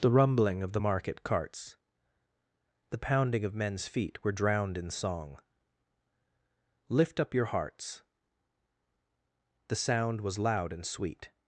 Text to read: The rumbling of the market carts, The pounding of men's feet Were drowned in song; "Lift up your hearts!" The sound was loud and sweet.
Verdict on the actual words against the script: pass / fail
pass